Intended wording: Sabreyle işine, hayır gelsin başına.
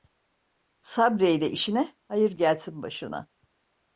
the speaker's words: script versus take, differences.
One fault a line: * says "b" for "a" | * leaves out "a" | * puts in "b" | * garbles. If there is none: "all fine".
all fine